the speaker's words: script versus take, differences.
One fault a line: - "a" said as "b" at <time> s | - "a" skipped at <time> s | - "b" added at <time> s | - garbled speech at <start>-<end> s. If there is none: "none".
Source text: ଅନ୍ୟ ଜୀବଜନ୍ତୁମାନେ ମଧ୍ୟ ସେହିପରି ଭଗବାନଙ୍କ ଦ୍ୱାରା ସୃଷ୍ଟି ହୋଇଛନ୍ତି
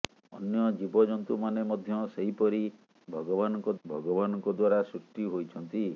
- "ଭଗବାନଙ୍କ" added at 3.8 s